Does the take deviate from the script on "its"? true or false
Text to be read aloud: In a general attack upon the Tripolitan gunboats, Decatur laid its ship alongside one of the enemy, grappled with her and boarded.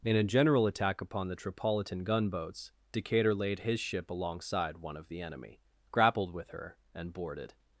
true